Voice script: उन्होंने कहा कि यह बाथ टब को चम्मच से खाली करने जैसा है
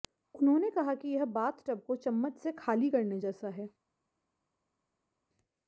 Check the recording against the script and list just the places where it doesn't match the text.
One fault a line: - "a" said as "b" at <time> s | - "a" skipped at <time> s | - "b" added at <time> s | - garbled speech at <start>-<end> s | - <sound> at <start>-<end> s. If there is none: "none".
none